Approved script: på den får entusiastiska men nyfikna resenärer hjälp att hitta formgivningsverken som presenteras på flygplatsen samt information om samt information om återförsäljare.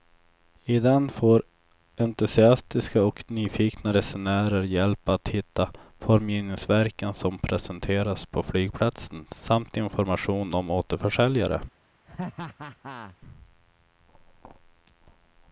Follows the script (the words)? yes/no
no